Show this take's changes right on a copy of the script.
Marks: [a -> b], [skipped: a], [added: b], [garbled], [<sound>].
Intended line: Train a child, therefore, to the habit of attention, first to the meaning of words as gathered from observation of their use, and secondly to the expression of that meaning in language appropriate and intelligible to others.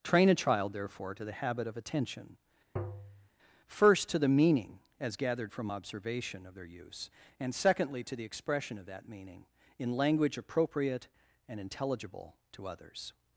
Train a child, therefore, to the habit of attention, [tap] first to the meaning [skipped: of words] as gathered from observation of their use, and secondly to the expression of that meaning in language appropriate and intelligible to others.